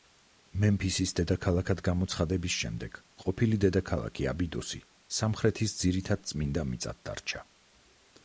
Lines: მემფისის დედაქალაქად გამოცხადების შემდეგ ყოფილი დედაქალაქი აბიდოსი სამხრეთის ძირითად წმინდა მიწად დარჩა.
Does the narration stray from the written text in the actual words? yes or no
no